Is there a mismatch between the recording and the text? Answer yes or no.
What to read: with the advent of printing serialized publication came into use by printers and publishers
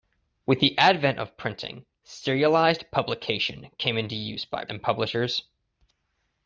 yes